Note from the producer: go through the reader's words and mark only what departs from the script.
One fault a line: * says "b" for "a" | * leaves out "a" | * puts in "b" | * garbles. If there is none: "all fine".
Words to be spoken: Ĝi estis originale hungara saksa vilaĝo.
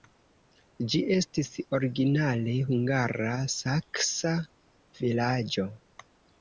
all fine